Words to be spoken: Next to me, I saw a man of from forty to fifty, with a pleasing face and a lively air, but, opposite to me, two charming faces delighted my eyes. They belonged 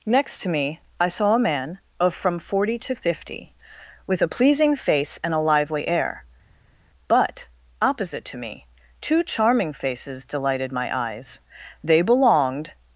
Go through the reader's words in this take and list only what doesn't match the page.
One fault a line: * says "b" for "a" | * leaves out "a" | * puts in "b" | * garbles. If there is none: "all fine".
all fine